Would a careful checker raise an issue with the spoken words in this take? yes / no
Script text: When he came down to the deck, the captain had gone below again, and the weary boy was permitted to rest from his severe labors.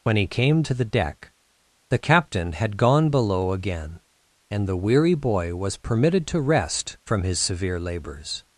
yes